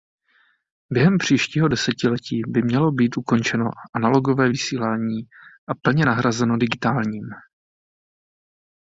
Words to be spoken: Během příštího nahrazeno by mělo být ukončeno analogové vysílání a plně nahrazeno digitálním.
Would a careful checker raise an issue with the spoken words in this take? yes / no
yes